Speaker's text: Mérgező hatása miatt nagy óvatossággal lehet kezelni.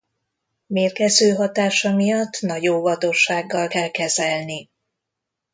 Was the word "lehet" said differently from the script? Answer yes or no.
yes